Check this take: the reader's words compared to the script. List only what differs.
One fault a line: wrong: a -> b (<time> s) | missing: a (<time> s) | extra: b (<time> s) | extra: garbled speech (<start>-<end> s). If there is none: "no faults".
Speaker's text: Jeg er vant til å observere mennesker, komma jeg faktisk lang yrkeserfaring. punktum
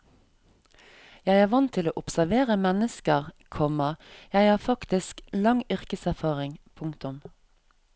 extra: har (4.5 s)